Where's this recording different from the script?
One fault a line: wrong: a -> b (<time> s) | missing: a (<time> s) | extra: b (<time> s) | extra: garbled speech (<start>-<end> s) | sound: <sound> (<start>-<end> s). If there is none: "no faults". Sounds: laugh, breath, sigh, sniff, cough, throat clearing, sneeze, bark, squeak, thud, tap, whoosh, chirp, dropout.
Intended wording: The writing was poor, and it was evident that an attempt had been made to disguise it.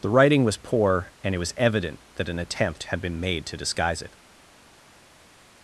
no faults